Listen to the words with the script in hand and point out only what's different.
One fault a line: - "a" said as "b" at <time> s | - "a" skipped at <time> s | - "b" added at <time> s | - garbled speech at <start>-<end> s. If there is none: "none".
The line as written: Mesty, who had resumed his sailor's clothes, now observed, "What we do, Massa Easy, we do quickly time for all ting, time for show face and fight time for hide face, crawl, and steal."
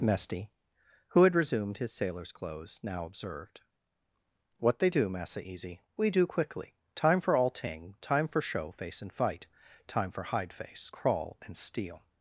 - "we" said as "they" at 4.8 s